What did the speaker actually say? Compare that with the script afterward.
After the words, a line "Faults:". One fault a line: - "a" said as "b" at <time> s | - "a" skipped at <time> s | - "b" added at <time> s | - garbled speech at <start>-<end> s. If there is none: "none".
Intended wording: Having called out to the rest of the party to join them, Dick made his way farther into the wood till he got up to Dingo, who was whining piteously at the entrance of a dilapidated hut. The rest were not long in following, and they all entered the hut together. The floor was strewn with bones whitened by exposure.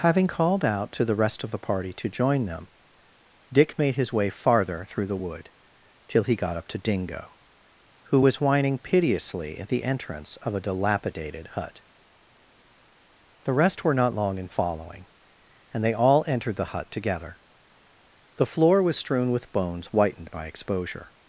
Having called out to the rest of the party to join them, Dick made his way farther through the wood till he got up to Dingo, who was whining piteously at the entrance of a dilapidated hut. The rest were not long in following, and they all entered the hut together. The floor was strewn with bones whitened by exposure.
Faults:
- "into" said as "through" at 4.8 s